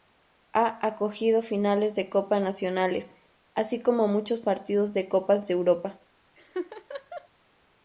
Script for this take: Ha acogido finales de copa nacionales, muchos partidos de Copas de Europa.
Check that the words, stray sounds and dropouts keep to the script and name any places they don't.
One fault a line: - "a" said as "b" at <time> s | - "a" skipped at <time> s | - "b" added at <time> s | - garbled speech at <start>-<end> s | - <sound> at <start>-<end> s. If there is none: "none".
- "así como" added at 3.5 s
- laugh at 6.4-7.3 s